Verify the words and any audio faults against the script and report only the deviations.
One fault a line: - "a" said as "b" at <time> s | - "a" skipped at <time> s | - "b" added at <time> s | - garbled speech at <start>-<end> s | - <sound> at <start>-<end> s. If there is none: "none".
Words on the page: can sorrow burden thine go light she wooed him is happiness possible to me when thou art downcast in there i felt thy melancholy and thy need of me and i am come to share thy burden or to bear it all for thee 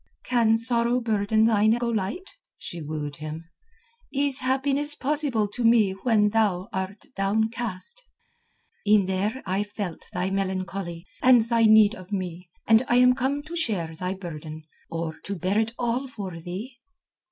none